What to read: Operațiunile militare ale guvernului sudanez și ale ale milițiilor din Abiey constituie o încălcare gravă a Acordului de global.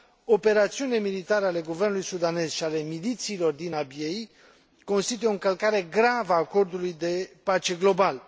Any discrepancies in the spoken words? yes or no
yes